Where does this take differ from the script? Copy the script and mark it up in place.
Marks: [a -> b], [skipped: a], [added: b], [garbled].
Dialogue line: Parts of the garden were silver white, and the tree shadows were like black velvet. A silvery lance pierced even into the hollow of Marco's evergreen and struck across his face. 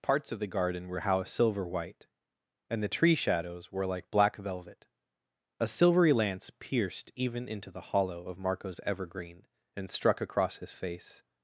Parts of the garden were [added: how] silver white, and the tree shadows were like black velvet. A silvery lance pierced even into the hollow of Marco's evergreen and struck across his face.